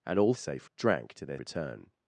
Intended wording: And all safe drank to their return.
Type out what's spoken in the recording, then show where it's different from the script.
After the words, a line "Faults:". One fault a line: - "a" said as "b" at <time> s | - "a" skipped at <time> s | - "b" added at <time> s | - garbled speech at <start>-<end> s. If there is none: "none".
And all safe drank to their return.
Faults:
none